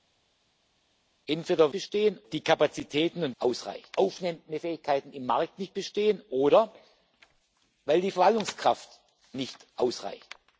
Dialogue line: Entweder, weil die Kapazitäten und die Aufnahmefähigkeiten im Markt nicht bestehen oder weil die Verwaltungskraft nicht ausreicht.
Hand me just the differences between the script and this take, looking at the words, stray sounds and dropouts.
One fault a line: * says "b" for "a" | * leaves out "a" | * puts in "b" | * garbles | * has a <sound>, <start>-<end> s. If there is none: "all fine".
* says "bestehen" for "weil"
* says "ausreicht" for "die"